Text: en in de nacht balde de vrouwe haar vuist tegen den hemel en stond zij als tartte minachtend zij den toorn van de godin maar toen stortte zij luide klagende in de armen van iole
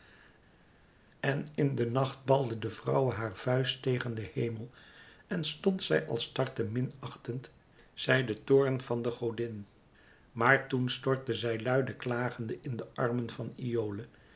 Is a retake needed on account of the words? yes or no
no